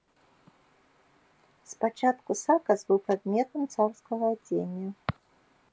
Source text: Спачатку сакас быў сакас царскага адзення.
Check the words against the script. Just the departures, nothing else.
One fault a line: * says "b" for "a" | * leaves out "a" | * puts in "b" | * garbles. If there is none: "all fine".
* says "прадметам" for "сакас"